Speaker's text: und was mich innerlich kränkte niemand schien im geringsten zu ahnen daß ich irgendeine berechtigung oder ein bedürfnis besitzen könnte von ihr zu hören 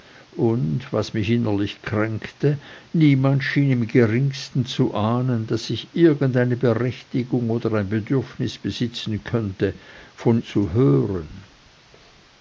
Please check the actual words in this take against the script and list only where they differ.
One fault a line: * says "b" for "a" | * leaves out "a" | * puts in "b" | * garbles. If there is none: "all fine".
* leaves out "ihr"